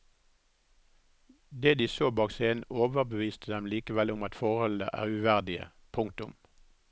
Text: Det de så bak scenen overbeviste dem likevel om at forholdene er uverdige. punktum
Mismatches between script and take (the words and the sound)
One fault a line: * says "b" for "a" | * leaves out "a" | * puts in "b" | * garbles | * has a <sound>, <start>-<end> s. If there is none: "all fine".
all fine